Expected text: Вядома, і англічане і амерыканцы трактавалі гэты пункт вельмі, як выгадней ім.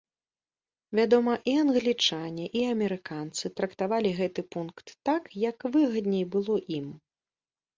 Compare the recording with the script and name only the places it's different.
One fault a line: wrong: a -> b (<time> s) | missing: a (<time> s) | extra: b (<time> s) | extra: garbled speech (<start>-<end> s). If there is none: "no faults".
wrong: вельмі -> так (5.1 s)
extra: было (6.4 s)